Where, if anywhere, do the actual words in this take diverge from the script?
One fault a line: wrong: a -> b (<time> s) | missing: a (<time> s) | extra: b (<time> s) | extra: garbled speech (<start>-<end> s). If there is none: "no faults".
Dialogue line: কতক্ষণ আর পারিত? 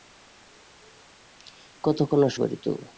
no faults